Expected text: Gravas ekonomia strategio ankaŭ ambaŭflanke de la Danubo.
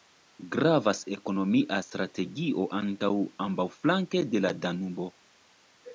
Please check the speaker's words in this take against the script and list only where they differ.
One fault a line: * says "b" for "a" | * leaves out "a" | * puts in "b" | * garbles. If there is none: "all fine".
all fine